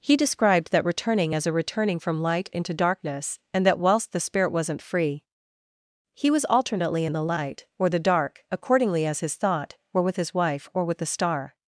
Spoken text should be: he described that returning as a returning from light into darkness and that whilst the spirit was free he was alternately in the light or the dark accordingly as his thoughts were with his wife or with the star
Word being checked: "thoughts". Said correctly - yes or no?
no